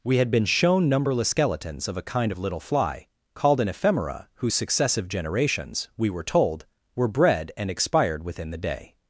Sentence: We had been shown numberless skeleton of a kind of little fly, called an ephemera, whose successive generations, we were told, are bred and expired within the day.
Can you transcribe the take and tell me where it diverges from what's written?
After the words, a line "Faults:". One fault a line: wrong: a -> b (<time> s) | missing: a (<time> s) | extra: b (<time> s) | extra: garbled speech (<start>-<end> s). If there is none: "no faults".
We had been shown numberless skeletons of a kind of little fly, called an ephemera, whose successive generations, we were told, were bred and expired within the day.
Faults:
wrong: skeleton -> skeletons (1.3 s)
wrong: are -> were (7.0 s)